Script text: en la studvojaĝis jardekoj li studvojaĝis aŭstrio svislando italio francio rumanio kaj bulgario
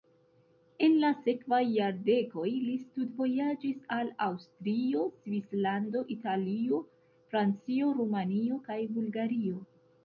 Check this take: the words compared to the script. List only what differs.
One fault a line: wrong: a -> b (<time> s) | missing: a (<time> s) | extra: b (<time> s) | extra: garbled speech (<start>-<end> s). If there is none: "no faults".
wrong: studvojaĝis -> sekvaj (1.2 s)
extra: al (4.0 s)